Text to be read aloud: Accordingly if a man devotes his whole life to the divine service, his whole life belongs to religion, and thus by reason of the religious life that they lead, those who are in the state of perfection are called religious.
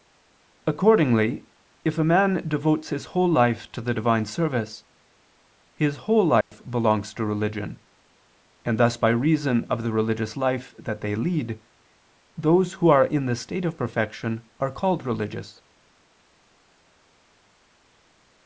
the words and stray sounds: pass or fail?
fail